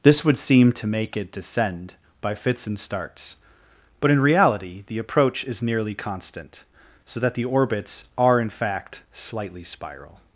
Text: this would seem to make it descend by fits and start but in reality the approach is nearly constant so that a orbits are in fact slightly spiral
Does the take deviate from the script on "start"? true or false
true